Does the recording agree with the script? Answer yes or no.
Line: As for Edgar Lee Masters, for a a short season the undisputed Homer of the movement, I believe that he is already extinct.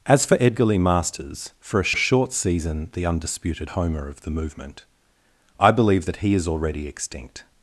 yes